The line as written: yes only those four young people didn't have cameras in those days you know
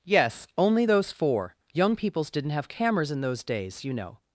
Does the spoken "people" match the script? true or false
false